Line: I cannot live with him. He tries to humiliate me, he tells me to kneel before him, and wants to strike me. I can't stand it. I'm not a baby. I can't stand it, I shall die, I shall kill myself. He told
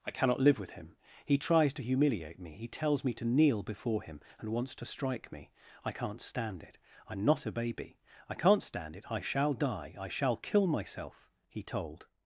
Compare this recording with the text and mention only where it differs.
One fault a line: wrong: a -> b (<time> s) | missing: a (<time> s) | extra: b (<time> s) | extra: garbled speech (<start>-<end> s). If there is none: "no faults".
no faults